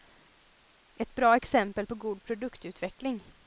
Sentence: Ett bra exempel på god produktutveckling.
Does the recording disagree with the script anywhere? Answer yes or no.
no